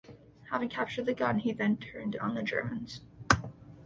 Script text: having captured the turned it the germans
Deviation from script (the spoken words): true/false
true